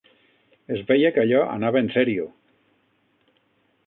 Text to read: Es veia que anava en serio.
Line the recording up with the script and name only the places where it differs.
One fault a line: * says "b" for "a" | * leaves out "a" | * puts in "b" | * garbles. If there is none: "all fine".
* puts in "allò"